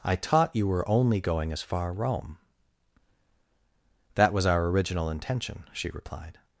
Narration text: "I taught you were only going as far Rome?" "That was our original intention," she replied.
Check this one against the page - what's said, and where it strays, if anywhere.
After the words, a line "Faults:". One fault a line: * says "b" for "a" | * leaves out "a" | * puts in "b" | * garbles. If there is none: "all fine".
"I taught you were only going as far Rome?" "That was our original intention," she replied.
Faults:
all fine